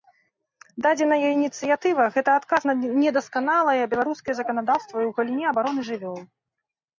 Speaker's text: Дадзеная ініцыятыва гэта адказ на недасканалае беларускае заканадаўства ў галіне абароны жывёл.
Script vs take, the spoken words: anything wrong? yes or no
no